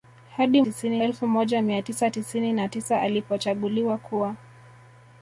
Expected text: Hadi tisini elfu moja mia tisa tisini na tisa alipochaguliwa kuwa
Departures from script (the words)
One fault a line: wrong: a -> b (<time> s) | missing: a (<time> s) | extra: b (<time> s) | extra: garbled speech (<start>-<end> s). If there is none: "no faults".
no faults